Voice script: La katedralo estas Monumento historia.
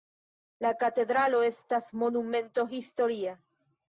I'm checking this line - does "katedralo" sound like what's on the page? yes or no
yes